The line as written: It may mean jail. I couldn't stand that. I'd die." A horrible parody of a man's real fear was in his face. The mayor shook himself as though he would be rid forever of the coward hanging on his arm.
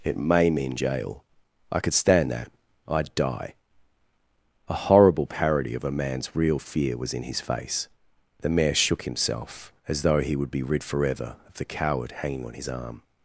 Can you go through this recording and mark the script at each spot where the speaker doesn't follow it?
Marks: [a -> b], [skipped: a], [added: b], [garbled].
It may mean jail. I [couldn't -> could] stand that. I'd die." A horrible parody of a man's real fear was in his face. The mayor shook himself as though he would be rid forever of the coward hanging on his arm.